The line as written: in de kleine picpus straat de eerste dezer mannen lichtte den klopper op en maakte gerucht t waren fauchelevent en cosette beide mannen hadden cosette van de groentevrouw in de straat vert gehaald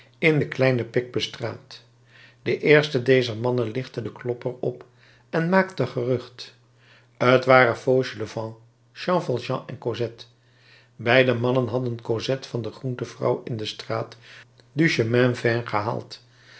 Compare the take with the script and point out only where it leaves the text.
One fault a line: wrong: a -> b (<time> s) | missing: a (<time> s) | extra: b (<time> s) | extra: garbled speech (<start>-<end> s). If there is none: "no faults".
extra: jean valjean (8.9 s)
extra: du chemin (14.7 s)